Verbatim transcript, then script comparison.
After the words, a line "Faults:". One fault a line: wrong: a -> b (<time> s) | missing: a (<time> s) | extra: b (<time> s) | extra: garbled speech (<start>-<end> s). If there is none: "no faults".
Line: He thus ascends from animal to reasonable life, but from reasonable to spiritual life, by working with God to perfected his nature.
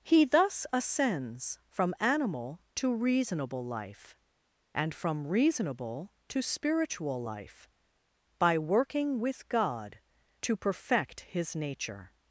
He thus ascends from animal to reasonable life, and from reasonable to spiritual life, by working with God to perfect his nature.
Faults:
wrong: but -> and (4.7 s)
wrong: perfected -> perfect (10.6 s)